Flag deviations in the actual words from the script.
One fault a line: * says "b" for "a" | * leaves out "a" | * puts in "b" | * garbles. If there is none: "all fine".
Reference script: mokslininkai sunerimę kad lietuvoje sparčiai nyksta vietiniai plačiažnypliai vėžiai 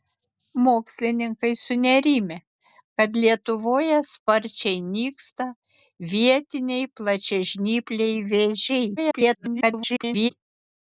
* garbles